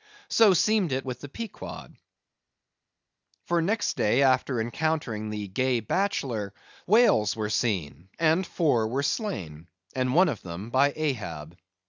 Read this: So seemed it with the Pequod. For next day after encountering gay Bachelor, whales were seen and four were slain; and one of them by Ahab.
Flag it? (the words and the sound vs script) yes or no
yes